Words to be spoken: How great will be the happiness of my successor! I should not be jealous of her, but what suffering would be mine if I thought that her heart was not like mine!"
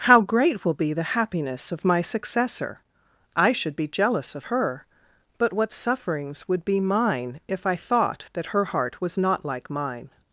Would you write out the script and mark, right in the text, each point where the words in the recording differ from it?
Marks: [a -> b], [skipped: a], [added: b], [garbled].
How great will be the happiness of my successor! I should [skipped: not] be jealous of her, but what [suffering -> sufferings] would be mine if I thought that her heart was not like mine!"